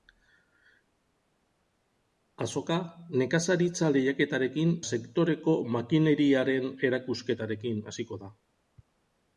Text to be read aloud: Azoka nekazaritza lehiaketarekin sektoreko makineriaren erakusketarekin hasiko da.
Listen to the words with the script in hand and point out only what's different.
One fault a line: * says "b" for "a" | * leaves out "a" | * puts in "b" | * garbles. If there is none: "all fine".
all fine